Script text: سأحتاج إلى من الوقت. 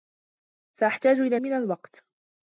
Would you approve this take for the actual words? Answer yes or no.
yes